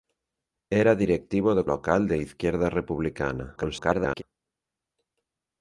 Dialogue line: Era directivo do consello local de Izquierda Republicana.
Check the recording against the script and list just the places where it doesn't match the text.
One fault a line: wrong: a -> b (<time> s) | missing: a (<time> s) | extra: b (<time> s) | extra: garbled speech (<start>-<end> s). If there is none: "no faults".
missing: consello (1.6 s)
extra: garbled speech (3.6-4.2 s)